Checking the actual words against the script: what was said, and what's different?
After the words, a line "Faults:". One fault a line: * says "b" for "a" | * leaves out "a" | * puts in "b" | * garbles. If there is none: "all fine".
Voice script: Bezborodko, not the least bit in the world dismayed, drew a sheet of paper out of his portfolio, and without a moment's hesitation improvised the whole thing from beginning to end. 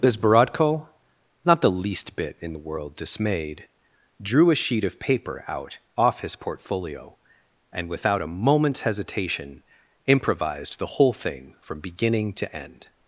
Bezborodko, not the least bit in the world dismayed, drew a sheet of paper out off his portfolio, and without a moment's hesitation improvised the whole thing from beginning to end.
Faults:
* says "off" for "of"